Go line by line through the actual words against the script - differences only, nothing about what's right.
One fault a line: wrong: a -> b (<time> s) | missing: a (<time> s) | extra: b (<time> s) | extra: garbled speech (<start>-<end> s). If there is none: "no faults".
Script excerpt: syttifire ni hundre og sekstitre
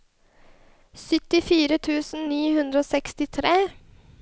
extra: tusen (1.9 s)